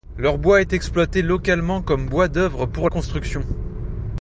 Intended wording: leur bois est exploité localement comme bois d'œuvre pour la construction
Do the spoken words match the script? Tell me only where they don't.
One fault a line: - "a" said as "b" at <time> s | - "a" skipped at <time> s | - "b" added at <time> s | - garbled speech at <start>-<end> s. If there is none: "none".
- "la" skipped at 2.9 s